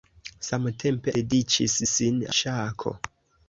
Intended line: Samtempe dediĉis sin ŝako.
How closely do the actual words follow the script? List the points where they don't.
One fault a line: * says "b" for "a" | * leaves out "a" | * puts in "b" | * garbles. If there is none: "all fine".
all fine